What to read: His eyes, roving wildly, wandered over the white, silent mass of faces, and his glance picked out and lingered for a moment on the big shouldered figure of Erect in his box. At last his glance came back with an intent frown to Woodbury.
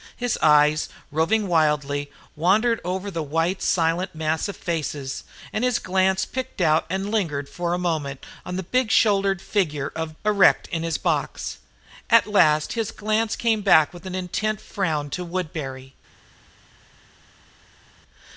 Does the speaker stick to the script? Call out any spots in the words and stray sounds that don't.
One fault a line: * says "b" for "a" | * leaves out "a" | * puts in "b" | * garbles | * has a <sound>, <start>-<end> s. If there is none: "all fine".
all fine